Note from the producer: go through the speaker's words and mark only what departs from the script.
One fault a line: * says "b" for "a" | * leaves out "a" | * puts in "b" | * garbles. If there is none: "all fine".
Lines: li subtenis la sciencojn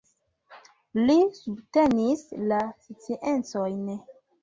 all fine